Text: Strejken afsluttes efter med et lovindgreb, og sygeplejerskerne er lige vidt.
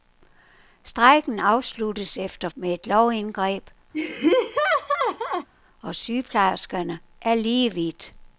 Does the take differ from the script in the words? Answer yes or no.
no